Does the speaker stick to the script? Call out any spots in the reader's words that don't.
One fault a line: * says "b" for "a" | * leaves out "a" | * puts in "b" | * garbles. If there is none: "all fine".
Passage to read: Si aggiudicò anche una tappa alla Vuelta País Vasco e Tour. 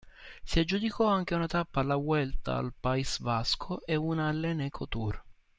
* puts in "al"
* puts in "una all'Eneco"